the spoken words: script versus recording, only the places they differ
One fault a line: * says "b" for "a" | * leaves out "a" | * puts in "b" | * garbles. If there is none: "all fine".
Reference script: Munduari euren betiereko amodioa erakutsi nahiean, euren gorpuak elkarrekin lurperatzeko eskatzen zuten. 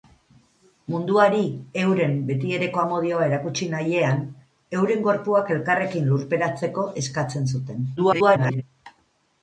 * garbles